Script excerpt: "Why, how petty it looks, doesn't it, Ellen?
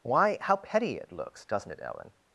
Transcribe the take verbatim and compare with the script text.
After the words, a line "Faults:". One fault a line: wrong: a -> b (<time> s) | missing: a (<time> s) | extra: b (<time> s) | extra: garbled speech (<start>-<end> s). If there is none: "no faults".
"Why, how petty it looks, doesn't it, Ellen?
Faults:
no faults